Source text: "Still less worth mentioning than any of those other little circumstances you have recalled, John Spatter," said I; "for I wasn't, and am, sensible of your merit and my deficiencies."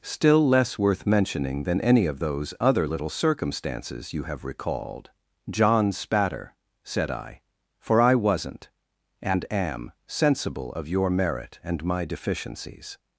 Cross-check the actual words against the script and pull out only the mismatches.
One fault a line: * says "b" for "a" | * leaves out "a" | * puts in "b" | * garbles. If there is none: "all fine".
all fine